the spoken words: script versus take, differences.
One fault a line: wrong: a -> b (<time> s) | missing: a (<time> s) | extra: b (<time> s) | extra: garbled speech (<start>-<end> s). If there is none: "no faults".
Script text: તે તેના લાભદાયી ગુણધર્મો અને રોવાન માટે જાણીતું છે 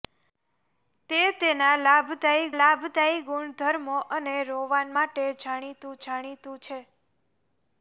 extra: લાભદાયી (2.6 s)
extra: જાણીતું (6.0 s)